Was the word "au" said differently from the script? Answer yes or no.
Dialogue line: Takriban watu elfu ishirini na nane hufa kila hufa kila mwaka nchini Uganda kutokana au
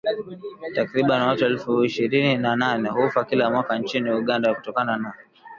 yes